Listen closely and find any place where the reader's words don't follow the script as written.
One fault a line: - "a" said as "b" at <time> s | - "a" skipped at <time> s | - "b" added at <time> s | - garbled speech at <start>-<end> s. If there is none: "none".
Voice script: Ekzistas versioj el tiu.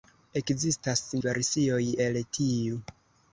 none